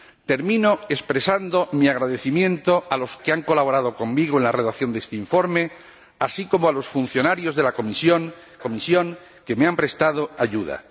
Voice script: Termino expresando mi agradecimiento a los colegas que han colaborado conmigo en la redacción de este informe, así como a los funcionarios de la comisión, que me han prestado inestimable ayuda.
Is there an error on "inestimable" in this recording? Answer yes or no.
yes